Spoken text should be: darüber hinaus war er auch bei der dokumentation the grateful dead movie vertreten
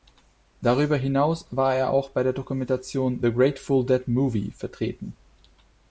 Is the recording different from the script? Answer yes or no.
no